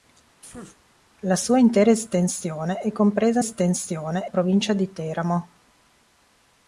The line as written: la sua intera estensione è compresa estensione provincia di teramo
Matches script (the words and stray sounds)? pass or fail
fail